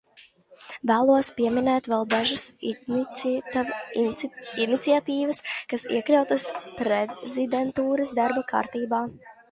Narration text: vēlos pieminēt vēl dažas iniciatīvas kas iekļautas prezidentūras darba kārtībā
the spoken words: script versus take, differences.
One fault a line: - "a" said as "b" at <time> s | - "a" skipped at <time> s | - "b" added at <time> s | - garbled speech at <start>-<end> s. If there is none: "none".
none